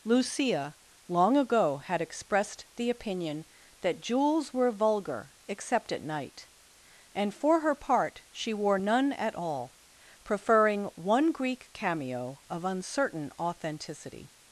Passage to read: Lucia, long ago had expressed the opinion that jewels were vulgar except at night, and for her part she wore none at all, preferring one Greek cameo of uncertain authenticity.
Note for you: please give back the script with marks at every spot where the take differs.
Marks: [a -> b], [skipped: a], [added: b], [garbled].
Lucia, long ago had expressed the opinion that jewels were vulgar except at night, and for her part she wore none at all, preferring one Greek cameo of uncertain authenticity.